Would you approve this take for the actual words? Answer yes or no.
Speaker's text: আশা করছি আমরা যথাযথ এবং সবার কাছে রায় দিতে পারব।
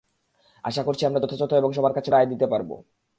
yes